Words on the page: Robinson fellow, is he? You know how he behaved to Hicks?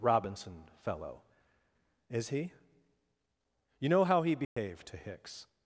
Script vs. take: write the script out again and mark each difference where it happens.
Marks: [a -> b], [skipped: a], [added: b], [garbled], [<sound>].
Robinson fellow, is he? You know how he behaved [dropout] to Hicks?